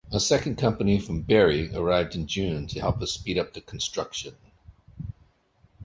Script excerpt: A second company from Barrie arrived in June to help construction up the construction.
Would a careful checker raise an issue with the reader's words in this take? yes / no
yes